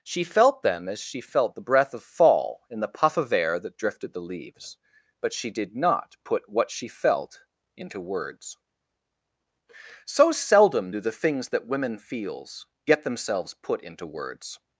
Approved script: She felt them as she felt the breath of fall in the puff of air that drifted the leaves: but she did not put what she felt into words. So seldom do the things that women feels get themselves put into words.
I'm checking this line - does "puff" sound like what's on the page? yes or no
yes